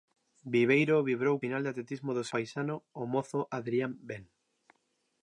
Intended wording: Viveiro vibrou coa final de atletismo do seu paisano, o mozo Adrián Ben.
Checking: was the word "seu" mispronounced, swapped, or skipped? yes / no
yes